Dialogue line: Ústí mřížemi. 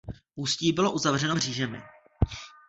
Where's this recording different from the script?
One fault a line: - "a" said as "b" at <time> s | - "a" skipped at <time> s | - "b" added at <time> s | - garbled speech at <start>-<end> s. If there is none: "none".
- "bylo uzavřeno" added at 0.7 s